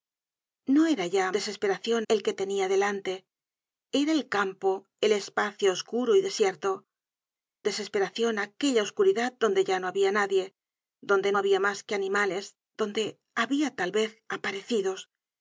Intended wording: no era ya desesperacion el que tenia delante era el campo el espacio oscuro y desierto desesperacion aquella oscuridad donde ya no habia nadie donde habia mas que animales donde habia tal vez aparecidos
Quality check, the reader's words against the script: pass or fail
pass